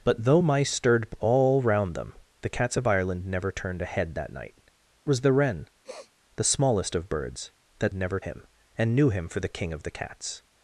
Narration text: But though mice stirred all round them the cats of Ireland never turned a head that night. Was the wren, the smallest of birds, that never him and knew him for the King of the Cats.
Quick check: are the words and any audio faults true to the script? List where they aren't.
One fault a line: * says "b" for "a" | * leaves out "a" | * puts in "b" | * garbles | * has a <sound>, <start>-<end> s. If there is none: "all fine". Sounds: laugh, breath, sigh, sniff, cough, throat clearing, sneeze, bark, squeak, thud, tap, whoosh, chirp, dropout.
* has a sniff, 5.8-6.1 s